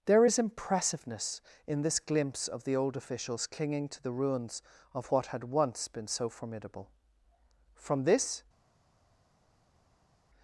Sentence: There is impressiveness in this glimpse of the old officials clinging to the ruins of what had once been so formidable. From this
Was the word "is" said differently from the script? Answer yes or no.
no